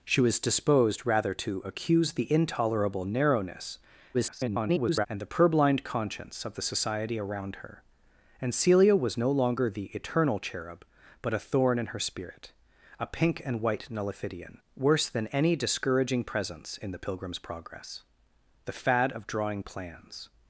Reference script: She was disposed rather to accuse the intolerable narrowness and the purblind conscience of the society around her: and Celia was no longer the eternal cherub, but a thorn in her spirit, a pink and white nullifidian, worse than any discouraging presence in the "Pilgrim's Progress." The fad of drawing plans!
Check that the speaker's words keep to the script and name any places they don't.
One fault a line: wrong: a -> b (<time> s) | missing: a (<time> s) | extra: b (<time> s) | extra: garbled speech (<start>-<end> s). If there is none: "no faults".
extra: garbled speech (4.1-5.1 s)